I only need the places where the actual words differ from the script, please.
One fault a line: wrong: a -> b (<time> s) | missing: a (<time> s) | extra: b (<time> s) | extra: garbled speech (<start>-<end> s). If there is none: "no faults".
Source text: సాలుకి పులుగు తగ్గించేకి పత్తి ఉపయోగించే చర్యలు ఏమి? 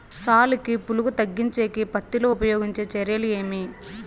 extra: లో (2.2 s)